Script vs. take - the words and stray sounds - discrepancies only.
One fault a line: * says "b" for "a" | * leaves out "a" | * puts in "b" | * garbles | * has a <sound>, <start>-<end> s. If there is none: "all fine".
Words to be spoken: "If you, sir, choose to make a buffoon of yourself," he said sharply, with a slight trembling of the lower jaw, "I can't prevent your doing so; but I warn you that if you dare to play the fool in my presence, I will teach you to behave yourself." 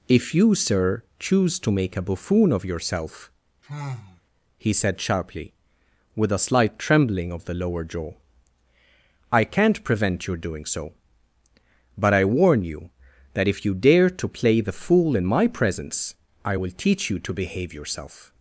* has a sigh, 3.6-4.2 s